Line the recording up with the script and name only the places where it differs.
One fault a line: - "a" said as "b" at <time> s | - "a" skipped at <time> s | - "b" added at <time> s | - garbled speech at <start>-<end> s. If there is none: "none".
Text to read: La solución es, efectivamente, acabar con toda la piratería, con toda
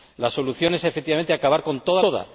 - "la piratería con" skipped at 2.0 s